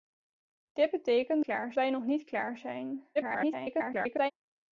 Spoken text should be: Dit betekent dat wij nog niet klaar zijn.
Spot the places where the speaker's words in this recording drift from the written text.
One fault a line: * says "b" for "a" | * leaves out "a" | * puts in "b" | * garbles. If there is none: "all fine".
* says "klaar" for "dat"
* garbles